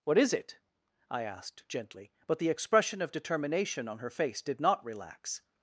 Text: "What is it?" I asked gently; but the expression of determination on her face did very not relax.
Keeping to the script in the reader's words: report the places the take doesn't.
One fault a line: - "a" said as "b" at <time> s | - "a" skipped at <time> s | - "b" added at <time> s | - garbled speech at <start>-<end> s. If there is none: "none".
- "very" skipped at 4.6 s